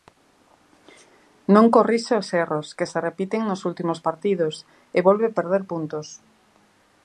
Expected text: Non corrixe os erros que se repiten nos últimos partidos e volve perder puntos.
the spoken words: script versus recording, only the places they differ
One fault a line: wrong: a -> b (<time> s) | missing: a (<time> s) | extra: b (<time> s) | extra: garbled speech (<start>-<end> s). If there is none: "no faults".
no faults